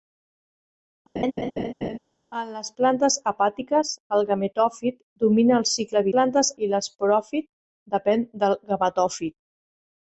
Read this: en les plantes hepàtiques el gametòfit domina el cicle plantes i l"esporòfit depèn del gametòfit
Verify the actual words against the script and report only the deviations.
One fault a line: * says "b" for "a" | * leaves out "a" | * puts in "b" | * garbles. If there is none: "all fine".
all fine